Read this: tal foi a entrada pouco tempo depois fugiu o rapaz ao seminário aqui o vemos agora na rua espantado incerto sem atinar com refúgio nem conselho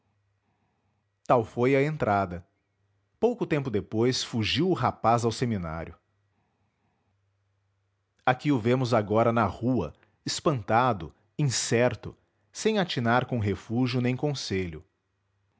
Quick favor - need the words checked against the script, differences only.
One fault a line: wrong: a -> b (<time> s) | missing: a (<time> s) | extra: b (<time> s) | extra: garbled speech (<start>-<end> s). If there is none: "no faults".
no faults